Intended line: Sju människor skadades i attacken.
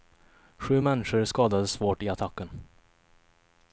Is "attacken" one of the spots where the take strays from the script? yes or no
no